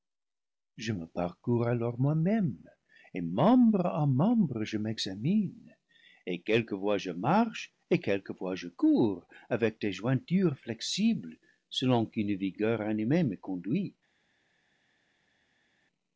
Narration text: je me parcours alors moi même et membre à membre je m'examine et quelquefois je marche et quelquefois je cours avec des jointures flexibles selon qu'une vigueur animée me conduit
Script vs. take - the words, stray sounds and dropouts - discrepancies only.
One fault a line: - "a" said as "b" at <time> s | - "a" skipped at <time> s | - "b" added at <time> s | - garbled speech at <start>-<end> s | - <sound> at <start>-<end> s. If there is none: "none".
none